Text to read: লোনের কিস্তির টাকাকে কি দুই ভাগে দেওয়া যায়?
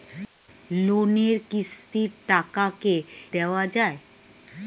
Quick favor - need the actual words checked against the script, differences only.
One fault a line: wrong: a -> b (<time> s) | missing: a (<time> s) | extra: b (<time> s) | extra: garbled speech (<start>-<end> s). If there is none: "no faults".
missing: কি দুই ভাগে (3.0 s)